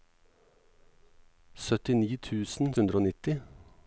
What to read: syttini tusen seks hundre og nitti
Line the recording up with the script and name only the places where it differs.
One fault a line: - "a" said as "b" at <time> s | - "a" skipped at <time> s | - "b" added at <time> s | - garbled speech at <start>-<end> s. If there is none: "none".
- "seks" skipped at 2.7 s